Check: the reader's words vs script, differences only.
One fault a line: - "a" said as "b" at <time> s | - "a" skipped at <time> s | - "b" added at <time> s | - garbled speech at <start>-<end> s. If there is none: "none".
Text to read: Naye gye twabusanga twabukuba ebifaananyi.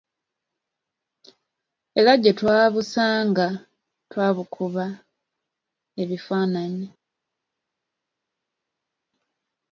- "Naye" said as "Era" at 2.0 s